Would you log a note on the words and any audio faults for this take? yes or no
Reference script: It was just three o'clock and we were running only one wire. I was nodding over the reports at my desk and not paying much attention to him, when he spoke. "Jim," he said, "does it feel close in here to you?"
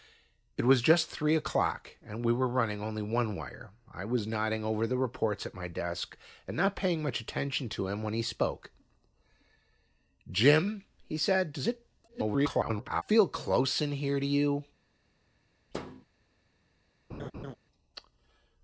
yes